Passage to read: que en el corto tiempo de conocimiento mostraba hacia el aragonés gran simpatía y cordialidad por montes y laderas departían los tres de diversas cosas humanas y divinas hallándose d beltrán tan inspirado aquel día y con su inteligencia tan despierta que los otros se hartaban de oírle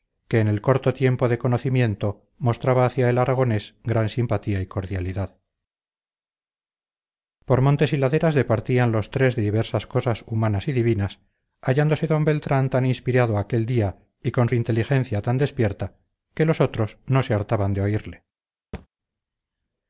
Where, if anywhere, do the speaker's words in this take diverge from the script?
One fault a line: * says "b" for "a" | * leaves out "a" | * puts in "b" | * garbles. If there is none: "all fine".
* puts in "no"